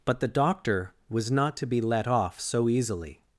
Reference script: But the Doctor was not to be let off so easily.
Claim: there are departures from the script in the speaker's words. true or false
false